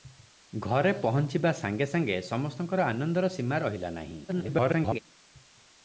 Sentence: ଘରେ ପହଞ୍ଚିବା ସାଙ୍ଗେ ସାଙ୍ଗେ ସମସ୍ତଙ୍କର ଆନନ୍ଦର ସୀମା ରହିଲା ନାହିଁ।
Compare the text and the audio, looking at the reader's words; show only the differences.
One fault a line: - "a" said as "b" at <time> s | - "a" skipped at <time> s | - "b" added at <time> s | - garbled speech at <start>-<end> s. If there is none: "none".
- garbled speech at 4.3-5.0 s